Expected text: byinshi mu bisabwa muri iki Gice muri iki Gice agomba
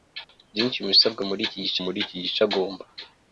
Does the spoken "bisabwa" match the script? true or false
true